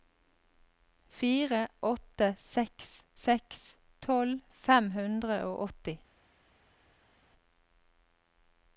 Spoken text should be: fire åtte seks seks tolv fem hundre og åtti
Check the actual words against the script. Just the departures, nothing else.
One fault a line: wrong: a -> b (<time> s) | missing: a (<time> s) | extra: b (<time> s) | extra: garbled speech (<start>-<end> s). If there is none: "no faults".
no faults